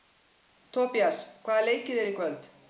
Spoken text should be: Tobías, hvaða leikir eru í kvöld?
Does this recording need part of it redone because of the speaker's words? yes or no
no